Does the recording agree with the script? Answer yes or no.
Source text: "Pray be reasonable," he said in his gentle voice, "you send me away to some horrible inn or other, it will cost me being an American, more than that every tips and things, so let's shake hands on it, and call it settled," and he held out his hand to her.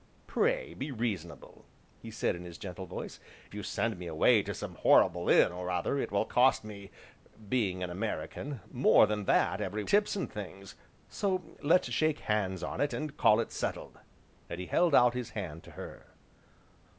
yes